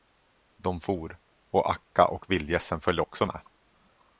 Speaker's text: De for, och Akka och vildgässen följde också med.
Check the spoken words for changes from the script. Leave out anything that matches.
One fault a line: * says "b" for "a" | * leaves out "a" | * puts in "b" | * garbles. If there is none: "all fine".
all fine